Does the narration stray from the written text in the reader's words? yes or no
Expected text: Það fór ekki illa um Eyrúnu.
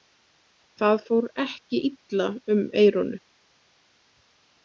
no